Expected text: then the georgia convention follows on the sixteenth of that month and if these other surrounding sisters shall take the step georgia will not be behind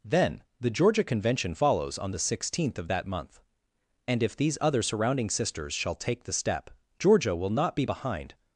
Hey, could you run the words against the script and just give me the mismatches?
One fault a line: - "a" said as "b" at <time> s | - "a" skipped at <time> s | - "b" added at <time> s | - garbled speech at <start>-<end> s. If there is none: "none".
none